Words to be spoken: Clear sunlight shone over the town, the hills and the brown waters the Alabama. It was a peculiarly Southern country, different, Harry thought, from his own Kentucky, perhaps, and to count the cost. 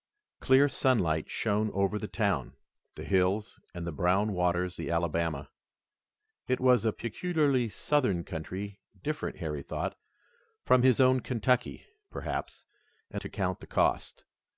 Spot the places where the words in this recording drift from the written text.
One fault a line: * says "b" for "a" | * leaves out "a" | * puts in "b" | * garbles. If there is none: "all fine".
all fine